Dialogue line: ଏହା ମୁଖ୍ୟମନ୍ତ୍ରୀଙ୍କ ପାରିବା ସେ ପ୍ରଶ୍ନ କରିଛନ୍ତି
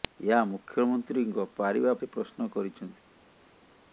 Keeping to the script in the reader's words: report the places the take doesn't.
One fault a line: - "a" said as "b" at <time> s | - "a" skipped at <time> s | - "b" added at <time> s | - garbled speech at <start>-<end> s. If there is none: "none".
none